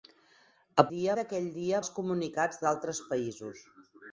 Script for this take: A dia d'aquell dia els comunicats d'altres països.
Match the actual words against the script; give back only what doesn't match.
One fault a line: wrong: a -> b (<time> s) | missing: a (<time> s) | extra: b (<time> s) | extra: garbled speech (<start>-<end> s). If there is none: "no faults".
no faults